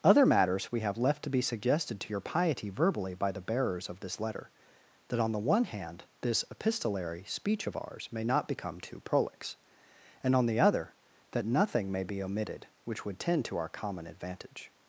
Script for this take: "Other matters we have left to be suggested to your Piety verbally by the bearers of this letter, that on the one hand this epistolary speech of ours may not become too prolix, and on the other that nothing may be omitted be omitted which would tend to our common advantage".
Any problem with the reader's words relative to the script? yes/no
yes